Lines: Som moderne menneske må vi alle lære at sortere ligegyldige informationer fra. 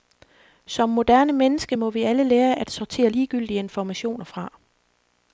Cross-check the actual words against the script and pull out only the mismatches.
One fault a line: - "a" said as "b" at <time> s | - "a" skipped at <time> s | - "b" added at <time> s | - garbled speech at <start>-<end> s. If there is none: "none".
none